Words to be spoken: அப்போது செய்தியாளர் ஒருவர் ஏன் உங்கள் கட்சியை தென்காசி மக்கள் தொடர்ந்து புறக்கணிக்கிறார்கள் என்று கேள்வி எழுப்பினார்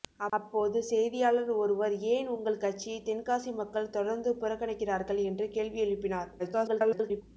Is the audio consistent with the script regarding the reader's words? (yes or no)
no